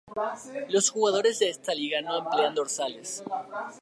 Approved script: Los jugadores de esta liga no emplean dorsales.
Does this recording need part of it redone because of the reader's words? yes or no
no